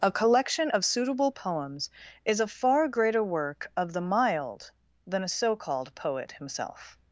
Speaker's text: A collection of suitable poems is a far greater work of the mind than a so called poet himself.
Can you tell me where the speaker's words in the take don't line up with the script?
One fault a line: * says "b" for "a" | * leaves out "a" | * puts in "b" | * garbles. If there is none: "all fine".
* says "mild" for "mind"